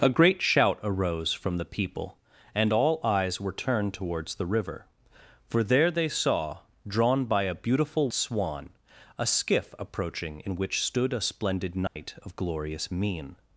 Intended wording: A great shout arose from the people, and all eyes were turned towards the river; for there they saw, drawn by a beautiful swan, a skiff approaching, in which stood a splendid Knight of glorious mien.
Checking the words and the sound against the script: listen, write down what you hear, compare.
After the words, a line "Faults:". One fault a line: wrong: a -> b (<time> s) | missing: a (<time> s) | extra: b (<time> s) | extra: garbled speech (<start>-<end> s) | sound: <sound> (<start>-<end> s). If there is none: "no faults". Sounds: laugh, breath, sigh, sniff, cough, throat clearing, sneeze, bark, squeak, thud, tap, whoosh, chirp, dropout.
A great shout arose from the people, and all eyes were turned towards the river; for there they saw, drawn by a beautiful swan, a skiff approaching, in which stood a splendid Knight of glorious mien.
Faults:
sound: dropout (11.9-12.0 s)